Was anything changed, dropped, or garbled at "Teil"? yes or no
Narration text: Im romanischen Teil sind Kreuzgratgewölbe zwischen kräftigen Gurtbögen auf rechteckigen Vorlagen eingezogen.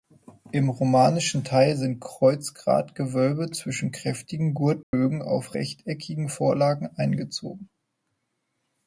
no